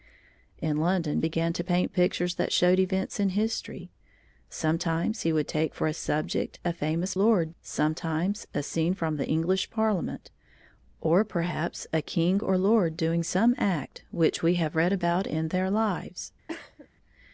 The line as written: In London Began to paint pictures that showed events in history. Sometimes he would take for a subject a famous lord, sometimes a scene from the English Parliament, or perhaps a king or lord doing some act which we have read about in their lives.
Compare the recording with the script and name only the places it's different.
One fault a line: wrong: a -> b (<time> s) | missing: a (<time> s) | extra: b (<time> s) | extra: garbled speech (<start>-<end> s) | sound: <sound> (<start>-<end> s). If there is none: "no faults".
sound: cough (16.5-16.9 s)